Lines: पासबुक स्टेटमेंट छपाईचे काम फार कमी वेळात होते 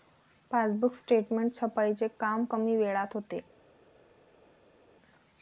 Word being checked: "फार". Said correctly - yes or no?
no